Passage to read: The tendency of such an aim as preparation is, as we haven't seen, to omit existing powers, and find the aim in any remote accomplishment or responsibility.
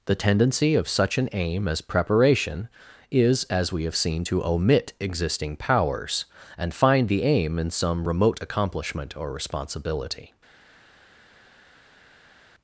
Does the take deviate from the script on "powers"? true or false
false